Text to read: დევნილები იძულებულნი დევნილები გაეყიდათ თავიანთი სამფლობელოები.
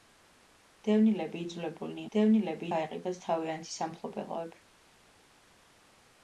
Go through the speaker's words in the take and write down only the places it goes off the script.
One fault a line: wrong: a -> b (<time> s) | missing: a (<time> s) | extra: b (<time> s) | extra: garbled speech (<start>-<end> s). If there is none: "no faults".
no faults